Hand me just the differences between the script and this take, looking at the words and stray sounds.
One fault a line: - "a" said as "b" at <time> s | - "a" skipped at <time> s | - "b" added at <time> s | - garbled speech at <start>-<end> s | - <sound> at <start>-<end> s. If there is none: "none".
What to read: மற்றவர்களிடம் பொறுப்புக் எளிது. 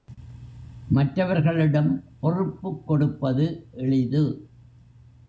- "கொடுப்பது" added at 2.9 s